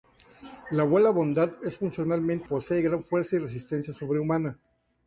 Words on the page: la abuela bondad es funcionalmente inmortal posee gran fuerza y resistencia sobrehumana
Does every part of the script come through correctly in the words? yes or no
no